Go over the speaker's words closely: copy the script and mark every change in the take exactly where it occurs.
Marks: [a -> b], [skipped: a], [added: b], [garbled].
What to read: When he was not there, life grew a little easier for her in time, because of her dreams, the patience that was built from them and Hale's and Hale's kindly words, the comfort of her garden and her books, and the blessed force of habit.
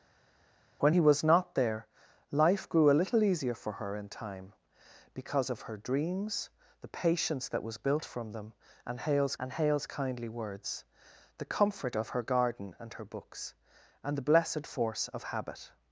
When he was not there, life grew a little easier for her in time, because of her dreams, the patience that was built from them and Hale's and Hale's kindly words, the comfort of her garden and her books, and the blessed force of habit.